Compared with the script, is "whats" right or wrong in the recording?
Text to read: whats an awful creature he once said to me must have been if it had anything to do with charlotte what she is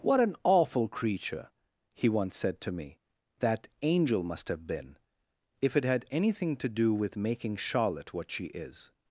wrong